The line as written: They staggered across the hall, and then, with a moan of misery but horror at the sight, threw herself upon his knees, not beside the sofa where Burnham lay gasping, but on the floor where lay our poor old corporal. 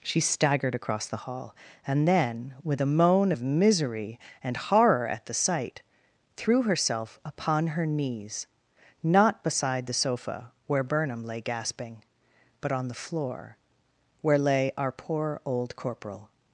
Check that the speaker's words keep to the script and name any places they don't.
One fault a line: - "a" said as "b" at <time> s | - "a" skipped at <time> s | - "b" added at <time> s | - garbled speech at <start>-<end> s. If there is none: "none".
- "They" said as "She" at 0.0 s
- "but" said as "and" at 4.4 s
- "his" said as "her" at 7.7 s